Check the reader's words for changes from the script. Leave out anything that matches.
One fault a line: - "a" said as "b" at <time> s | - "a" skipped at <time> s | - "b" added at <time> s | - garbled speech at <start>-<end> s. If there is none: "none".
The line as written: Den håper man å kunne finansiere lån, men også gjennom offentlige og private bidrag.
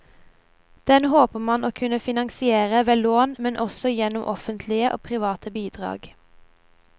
- "ved" added at 2.9 s